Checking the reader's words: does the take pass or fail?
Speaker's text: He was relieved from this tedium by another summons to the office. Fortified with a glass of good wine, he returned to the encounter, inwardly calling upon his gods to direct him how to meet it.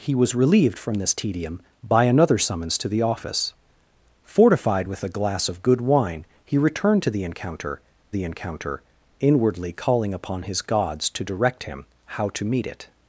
fail